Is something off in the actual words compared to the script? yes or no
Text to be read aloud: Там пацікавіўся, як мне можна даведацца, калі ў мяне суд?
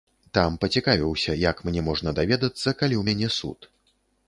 no